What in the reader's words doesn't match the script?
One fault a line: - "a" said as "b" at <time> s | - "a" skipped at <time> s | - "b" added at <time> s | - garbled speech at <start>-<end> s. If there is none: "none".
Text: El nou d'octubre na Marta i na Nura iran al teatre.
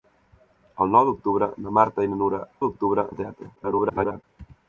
- "iran" said as "d'octubre" at 2.7 s
- garbled speech at 3.6-4.2 s